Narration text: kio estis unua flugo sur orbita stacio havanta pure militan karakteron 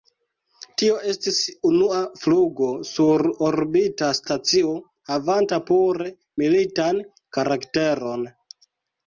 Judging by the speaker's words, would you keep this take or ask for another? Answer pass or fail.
fail